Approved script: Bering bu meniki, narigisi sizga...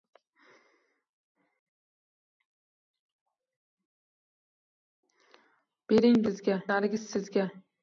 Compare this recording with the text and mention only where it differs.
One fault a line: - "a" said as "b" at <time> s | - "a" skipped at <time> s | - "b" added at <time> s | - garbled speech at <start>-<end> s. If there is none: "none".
- "meniki" said as "sizga" at 6.2 s